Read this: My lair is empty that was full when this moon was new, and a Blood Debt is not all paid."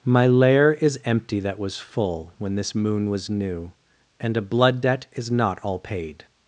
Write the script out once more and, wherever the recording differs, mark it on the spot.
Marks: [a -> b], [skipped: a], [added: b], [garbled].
My lair is empty that was full when this moon was new, and a Blood Debt is not all paid."